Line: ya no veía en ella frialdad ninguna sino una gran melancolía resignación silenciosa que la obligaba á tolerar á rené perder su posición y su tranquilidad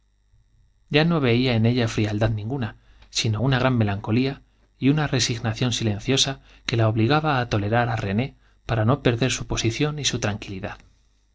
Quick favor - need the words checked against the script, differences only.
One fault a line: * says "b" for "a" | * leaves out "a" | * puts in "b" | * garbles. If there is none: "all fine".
* puts in "y una"
* puts in "para no"